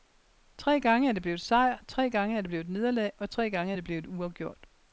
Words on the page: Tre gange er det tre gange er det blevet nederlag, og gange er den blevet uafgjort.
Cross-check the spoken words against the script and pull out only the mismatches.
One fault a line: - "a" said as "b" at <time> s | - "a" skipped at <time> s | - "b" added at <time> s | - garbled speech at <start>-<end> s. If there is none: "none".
- "blevet sejr" added at 1.2 s
- "tre" added at 3.3 s
- "den" said as "det" at 3.7 s